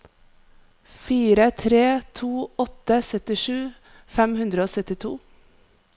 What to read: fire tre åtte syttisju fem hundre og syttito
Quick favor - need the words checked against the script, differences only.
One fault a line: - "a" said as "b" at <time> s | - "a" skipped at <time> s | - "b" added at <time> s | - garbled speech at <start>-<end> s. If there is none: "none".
- "to" added at 2.2 s